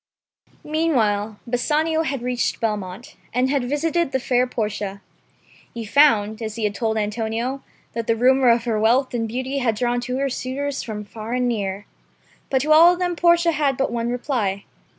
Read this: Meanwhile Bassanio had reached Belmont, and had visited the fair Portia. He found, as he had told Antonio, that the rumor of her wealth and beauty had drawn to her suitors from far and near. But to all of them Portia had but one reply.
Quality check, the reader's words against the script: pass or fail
pass